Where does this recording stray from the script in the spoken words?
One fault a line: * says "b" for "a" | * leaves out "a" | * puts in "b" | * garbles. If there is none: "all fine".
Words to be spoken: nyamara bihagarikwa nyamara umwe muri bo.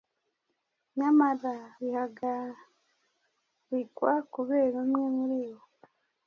* says "kubera" for "nyamara"